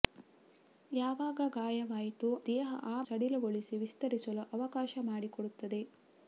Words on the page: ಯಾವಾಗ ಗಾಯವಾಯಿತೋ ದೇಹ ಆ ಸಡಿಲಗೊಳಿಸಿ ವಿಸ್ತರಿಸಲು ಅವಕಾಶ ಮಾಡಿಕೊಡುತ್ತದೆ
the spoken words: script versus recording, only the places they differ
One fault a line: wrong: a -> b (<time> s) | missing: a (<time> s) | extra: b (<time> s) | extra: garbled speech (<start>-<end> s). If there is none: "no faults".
no faults